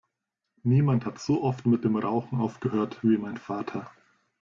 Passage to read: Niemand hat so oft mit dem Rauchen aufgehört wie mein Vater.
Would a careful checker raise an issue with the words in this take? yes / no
no